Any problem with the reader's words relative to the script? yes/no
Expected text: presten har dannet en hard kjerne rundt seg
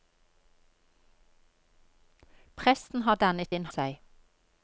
yes